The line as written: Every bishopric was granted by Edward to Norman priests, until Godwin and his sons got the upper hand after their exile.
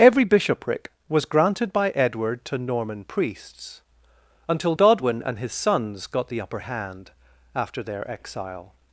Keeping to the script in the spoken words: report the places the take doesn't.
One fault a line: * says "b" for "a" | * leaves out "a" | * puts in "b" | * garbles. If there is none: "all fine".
all fine